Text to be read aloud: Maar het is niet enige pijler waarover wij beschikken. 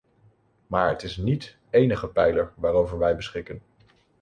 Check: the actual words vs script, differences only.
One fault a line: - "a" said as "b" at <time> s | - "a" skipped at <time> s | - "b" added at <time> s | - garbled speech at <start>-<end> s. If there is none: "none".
none